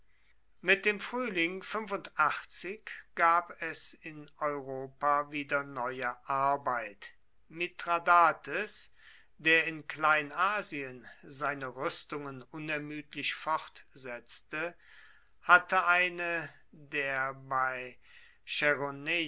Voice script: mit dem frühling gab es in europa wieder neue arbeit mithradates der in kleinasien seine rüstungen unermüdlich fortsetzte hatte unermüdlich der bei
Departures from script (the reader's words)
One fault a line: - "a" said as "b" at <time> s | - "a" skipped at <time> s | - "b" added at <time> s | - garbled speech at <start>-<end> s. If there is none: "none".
- "unermüdlich" said as "eine" at 15.9 s